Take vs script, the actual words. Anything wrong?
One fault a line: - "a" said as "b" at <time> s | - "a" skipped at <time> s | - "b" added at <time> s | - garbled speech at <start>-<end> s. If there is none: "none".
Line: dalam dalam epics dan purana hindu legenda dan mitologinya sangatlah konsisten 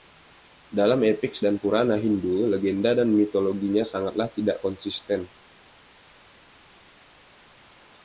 - "dalam" skipped at 1.1 s
- "tidak" added at 4.3 s